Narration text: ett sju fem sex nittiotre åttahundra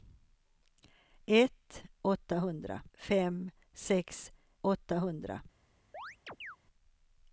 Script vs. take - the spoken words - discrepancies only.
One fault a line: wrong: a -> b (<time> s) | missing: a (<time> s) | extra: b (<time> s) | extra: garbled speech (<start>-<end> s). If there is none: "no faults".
wrong: sju -> åttahundra (2.0 s)
missing: nittiotre (4.3 s)